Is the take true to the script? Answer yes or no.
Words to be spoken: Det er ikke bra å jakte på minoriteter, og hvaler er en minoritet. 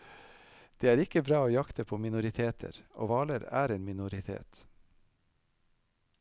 yes